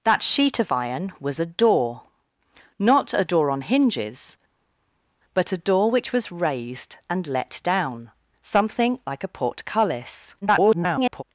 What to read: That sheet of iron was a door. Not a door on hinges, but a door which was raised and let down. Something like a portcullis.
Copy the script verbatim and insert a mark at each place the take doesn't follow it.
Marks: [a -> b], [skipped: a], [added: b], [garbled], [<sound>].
That sheet of iron was a door. Not a door on hinges, but a door which was raised and let down. Something like a portcullis. [garbled]